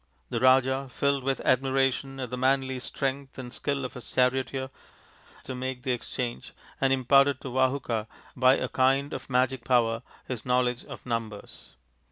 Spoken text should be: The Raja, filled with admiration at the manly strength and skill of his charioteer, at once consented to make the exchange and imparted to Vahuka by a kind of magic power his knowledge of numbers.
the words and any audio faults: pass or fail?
fail